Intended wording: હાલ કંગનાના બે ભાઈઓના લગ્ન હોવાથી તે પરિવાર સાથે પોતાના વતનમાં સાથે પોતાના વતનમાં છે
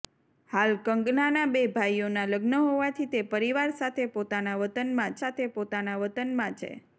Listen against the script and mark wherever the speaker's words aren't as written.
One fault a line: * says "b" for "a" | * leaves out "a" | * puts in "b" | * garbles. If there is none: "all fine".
all fine